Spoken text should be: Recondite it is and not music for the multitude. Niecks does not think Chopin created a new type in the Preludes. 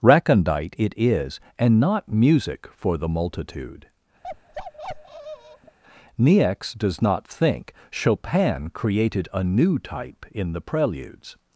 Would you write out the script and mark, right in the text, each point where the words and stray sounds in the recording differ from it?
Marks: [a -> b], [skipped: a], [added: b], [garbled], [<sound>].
Recondite it is and not music for the multitude. [bark] Niecks does not think Chopin created a new type in the Preludes.